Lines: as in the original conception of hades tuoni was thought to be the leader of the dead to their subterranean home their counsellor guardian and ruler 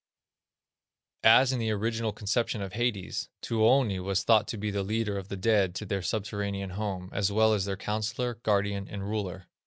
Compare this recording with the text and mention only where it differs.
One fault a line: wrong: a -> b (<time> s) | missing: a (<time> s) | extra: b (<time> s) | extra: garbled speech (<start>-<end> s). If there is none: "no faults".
extra: as well as (7.1 s)